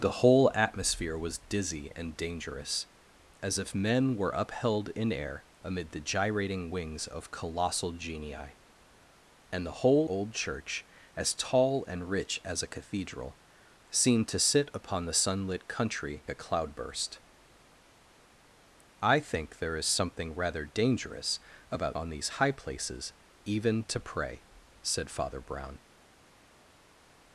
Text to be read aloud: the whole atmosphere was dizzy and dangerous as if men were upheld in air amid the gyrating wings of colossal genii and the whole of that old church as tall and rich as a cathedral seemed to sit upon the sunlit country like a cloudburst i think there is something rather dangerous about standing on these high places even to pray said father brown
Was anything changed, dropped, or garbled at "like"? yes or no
yes